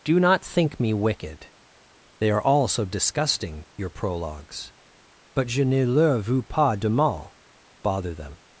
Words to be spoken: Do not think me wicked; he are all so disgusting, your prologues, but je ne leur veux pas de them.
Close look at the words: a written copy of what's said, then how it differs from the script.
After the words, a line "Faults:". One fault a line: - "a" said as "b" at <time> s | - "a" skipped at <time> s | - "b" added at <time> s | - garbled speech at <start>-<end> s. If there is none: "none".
Do not think me wicked; they are all so disgusting, your prologues, but je ne leur veux pas de mal, bother them.
Faults:
- "he" said as "they" at 2.2 s
- "mal bother" added at 6.9 s